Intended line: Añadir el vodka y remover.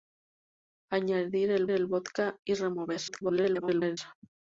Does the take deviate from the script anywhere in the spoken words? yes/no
yes